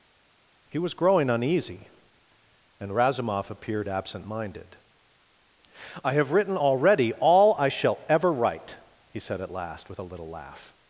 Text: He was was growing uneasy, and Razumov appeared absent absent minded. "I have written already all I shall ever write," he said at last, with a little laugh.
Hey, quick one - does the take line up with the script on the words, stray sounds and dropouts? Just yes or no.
no